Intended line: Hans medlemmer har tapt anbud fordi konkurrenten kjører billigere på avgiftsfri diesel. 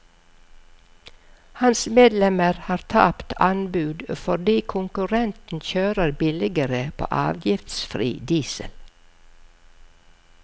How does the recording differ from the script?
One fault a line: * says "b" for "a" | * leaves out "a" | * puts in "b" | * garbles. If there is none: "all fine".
all fine